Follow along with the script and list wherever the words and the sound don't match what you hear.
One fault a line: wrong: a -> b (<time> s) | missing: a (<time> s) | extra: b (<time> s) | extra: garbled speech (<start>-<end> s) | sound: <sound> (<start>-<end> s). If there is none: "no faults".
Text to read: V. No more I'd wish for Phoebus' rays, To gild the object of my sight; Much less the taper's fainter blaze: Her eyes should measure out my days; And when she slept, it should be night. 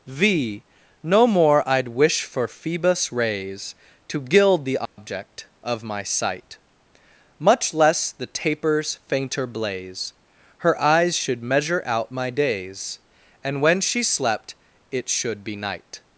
sound: dropout (4.9-5.0 s)